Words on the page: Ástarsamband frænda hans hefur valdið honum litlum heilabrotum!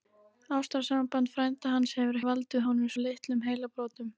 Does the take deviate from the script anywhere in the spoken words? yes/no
no